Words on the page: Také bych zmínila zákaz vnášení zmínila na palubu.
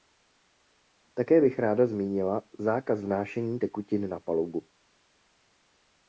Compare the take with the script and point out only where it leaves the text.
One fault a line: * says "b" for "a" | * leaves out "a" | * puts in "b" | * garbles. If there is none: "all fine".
* puts in "ráda"
* says "tekutin" for "zmínila"